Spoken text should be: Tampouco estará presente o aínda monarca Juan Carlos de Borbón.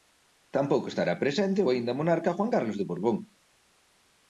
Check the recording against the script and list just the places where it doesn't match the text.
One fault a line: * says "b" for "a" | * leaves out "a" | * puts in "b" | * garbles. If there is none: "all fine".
all fine